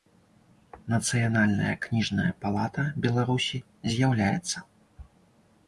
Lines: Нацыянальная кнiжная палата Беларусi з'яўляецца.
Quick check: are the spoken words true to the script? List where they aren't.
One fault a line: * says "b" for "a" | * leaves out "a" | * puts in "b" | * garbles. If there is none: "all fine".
all fine